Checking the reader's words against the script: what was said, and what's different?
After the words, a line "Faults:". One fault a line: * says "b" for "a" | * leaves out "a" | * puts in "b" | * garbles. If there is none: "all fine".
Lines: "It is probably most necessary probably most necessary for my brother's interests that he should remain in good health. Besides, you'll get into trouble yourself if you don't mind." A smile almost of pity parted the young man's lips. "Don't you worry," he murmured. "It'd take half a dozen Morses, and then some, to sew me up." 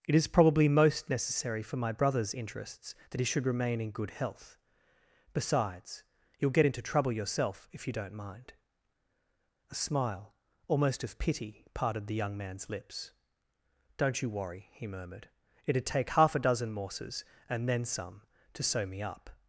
"It is probably most necessary for my brother's interests that he should remain in good health. Besides, you'll get into trouble yourself if you don't mind." A smile almost of pity parted the young man's lips. "Don't you worry," he murmured. "It'd take half a dozen Morses, and then some, to sew me up."
Faults:
* leaves out "probably most necessary"